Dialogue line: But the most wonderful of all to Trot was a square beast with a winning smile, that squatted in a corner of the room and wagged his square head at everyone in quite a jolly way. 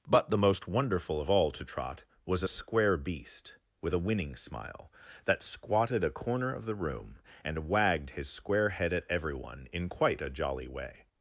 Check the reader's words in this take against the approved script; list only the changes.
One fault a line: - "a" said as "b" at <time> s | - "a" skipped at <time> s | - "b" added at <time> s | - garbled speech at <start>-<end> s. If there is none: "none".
- "in" skipped at 6.0 s